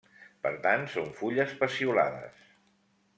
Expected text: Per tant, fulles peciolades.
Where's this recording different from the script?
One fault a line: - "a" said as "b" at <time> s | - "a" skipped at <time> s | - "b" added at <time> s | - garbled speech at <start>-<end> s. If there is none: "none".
- "són" added at 0.9 s